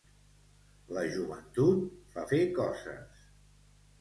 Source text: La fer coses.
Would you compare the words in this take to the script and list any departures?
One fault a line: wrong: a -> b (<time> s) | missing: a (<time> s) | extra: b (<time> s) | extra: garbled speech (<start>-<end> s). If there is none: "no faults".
extra: joventut fa (1.1 s)